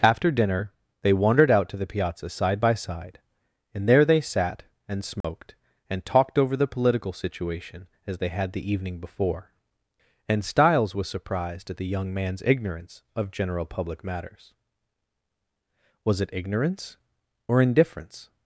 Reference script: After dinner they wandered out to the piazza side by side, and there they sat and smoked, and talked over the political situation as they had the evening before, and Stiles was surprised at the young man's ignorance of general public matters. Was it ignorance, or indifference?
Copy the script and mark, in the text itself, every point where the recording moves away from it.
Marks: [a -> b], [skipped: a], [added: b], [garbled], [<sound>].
After dinner they wandered out to the piazza side by side, and there they sat and smoked, [dropout] and talked over the political situation as they had the evening before, and Stiles was surprised at the young man's ignorance of general public matters. Was it ignorance, or indifference?